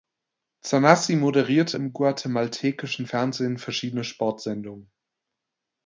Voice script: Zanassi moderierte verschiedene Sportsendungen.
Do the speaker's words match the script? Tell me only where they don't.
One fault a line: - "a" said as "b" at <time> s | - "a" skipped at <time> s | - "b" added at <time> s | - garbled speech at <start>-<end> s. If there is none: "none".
- "im guatemaltekischen Fernsehen" added at 1.7 s